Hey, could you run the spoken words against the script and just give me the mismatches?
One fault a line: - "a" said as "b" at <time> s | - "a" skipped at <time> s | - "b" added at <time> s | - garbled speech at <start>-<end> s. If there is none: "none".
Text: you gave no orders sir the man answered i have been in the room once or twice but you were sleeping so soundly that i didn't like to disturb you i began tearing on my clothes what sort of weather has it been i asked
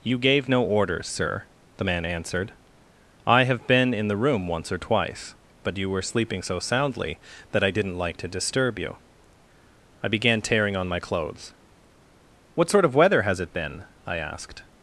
none